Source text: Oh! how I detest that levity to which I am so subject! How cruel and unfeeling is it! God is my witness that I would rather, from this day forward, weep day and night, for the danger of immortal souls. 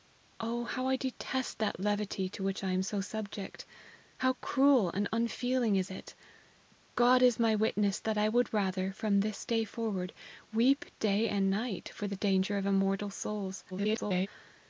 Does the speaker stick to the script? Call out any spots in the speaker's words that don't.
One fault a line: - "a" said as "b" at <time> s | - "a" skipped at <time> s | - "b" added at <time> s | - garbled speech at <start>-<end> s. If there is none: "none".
- garbled speech at 13.7-14.3 s